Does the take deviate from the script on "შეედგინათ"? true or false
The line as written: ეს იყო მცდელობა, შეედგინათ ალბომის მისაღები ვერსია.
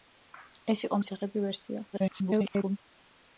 true